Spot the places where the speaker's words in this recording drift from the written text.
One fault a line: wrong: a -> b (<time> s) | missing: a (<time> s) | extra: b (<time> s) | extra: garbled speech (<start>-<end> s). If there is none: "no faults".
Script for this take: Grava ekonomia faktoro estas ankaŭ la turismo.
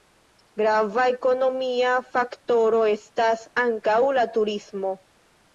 no faults